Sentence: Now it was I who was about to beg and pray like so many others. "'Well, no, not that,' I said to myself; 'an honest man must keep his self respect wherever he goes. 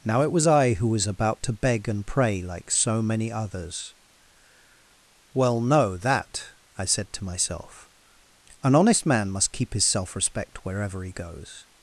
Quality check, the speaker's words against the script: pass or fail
fail